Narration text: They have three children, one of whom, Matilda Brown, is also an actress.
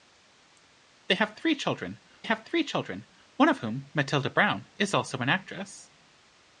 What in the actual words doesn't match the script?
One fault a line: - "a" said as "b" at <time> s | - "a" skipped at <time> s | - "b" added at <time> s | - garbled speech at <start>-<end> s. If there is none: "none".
- "have three children" added at 2.2 s